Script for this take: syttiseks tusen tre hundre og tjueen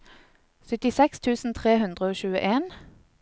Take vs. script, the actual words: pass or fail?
pass